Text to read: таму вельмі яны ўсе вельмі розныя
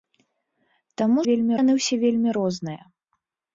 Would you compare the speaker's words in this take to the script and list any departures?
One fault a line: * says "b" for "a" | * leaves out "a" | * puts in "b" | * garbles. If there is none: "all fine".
all fine